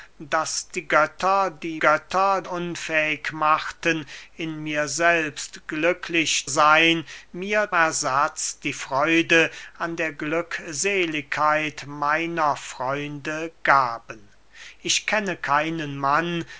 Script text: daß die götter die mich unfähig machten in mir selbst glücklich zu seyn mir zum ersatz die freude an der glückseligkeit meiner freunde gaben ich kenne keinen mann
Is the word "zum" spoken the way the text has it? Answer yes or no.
no